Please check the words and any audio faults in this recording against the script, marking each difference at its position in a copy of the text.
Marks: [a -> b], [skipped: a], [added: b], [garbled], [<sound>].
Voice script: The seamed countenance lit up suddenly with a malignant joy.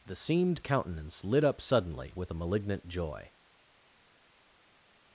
The seamed countenance lit up suddenly with a malignant joy.